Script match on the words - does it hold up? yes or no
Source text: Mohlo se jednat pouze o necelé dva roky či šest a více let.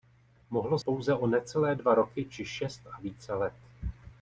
no